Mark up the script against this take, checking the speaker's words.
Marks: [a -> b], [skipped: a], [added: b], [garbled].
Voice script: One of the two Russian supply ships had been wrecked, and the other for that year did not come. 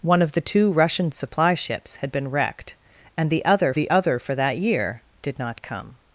One of the two Russian supply ships had been wrecked, and the other [added: the other] for that year did not come.